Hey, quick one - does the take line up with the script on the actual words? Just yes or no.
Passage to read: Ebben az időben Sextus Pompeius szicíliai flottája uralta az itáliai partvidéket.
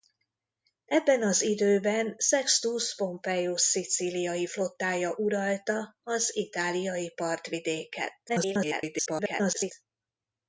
no